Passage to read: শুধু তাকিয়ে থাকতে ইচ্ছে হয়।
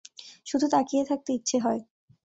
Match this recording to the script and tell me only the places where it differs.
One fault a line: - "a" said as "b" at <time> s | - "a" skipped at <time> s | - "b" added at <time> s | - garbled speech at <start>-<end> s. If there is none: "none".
none